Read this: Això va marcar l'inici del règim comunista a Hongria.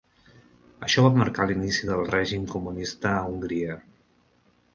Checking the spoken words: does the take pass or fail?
pass